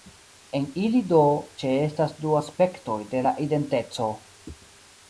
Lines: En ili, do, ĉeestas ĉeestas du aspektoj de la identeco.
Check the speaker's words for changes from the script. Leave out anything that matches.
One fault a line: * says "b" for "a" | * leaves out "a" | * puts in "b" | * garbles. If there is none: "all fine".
* leaves out "ĉeestas"